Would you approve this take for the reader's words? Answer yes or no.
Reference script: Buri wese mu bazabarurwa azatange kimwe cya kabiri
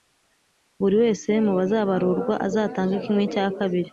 yes